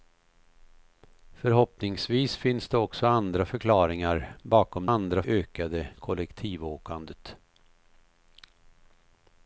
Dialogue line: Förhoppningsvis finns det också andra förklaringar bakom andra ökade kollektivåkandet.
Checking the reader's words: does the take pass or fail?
pass